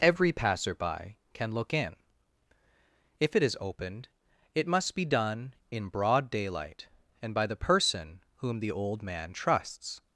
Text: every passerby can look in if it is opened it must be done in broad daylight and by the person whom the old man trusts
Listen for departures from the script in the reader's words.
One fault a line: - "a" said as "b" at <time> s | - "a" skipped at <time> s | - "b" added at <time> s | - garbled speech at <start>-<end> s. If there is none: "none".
none